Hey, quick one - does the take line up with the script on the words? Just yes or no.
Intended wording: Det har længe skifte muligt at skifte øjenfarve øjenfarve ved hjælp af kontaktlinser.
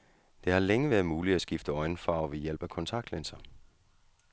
no